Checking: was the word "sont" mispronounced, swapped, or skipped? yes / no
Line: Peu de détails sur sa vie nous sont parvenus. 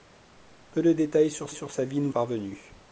yes